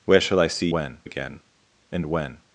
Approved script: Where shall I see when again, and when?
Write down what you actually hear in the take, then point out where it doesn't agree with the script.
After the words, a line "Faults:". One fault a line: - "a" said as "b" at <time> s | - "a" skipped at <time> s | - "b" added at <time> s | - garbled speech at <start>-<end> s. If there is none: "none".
Where shall I see when again, and when?
Faults:
none